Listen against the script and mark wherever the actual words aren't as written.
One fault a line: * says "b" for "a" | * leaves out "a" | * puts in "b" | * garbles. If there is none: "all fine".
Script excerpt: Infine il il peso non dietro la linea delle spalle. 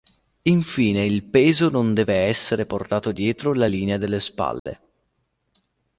* leaves out "il"
* puts in "deve essere portato"